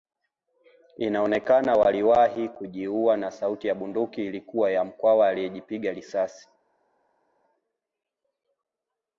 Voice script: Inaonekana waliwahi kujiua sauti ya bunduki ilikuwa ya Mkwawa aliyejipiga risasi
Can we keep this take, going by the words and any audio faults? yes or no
no